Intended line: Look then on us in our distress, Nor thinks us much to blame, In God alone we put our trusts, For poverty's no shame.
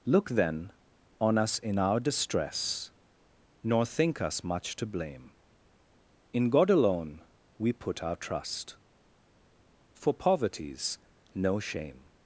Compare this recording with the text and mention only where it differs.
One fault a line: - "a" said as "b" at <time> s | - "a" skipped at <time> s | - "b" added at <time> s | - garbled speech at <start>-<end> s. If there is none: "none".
- "thinks" said as "think" at 3.9 s
- "trusts" said as "trust" at 8.2 s